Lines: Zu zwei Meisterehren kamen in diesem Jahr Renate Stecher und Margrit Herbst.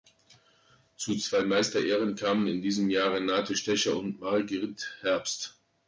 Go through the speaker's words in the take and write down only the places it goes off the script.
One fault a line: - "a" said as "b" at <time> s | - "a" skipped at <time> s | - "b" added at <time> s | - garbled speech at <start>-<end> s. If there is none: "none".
none